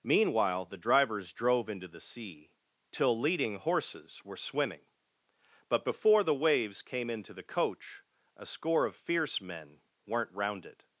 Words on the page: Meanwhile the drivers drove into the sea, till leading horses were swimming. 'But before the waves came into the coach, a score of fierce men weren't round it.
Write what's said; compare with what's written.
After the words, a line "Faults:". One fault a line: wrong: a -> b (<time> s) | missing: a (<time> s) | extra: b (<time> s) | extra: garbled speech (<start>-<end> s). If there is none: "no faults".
Meanwhile the drivers drove into the sea, till leading horses were swimming. 'But before the waves came into the coach, a score of fierce men weren't round it.
Faults:
no faults